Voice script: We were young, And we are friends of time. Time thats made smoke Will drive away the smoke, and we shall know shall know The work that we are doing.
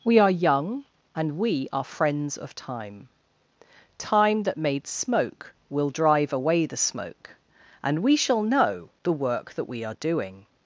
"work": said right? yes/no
yes